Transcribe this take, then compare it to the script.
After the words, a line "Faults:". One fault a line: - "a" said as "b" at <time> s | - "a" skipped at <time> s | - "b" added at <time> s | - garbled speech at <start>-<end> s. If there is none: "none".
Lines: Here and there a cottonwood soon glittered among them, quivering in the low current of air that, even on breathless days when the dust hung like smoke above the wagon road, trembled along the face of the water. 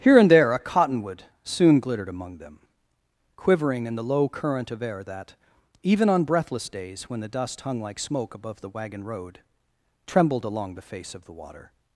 Here and there a cottonwood soon glittered among them, quivering in the low current of air that, even on breathless days when the dust hung like smoke above the wagon road, trembled along the face of the water.
Faults:
none